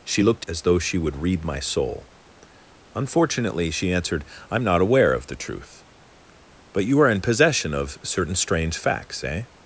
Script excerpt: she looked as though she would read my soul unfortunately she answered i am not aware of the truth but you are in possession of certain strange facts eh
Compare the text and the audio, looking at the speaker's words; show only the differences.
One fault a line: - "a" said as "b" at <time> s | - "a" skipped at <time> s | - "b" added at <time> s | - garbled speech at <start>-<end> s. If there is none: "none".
none